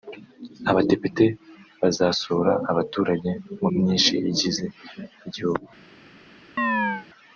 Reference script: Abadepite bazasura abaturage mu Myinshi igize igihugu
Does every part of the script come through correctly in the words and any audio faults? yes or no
no